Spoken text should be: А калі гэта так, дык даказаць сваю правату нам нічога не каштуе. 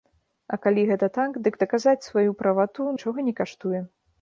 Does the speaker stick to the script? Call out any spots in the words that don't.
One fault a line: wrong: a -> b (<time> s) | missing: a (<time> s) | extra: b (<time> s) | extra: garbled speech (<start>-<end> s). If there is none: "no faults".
missing: нам (2.9 s)